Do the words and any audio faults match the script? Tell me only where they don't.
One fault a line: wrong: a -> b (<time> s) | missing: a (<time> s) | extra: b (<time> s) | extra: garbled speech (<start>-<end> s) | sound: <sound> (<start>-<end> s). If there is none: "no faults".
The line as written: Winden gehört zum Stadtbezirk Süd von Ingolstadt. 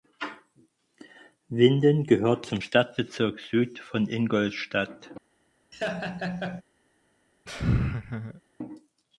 sound: laugh (5.7-6.6 s)
sound: laugh (7.5-8.4 s)